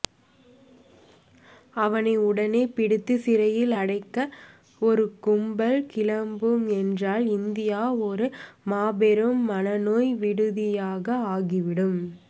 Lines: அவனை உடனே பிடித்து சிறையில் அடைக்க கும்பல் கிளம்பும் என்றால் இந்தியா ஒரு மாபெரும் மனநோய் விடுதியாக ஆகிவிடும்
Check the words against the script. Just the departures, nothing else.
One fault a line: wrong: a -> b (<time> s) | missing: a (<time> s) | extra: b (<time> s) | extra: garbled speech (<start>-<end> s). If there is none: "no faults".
extra: ஒரு (4.8 s)